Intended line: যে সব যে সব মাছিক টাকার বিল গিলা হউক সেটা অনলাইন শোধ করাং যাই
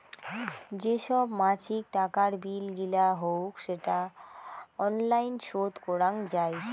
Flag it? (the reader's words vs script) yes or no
yes